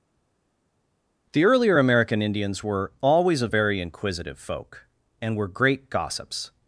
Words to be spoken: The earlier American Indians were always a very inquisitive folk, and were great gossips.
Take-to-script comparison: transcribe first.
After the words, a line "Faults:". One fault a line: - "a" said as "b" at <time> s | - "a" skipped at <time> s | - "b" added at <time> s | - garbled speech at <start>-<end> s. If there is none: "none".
The earlier American Indians were always a very inquisitive folk, and were great gossips.
Faults:
none